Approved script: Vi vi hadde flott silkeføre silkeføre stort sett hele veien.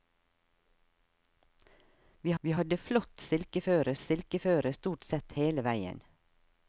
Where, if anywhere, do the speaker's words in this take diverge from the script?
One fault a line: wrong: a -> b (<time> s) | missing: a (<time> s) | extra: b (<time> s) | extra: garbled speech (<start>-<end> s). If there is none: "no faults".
no faults